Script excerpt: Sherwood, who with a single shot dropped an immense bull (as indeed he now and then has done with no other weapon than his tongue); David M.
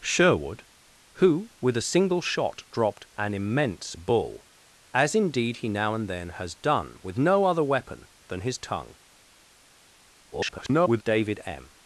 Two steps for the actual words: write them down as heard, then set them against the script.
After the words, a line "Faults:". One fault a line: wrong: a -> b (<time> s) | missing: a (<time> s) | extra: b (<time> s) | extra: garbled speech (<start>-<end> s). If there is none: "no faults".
Sherwood, who with a single shot dropped an immense bull (as indeed he now and then has done with no other weapon than his tongue); [garbled] David M.
Faults:
extra: garbled speech (10.3-11.0 s)